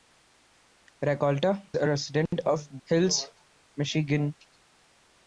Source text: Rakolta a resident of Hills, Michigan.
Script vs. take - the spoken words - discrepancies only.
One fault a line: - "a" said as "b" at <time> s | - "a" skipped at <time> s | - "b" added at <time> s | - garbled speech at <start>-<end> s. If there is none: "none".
none